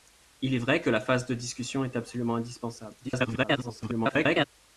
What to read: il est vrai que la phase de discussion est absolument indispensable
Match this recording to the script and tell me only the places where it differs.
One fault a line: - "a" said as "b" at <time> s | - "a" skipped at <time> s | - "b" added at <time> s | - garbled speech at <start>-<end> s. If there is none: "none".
- garbled speech at 3.0-4.5 s